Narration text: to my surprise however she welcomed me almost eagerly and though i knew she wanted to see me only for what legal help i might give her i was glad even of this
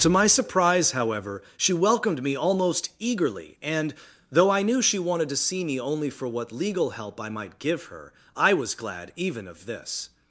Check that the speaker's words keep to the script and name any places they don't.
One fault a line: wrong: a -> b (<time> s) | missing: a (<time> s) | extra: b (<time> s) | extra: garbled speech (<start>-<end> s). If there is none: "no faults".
no faults